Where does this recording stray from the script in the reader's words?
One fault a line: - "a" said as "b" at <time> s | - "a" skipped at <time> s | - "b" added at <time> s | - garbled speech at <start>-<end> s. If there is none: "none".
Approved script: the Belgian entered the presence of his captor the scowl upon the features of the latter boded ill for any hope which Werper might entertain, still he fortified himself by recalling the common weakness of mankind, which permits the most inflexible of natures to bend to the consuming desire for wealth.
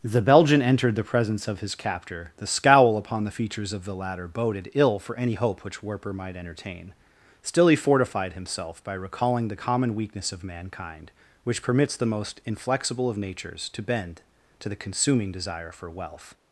none